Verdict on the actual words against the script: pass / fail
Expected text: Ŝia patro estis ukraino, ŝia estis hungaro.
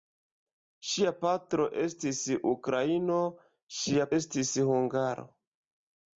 pass